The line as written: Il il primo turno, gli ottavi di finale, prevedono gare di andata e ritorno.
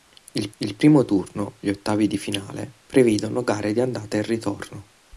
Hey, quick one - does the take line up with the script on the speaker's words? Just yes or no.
yes